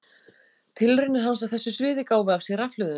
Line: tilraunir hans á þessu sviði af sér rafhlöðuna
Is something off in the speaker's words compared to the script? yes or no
yes